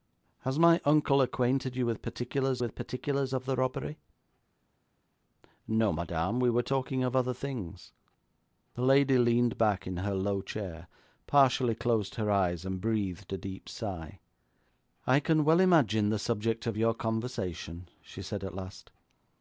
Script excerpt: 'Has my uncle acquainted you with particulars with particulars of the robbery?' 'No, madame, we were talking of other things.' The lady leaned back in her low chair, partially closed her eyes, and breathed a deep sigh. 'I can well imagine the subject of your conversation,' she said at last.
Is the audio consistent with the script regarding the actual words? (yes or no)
yes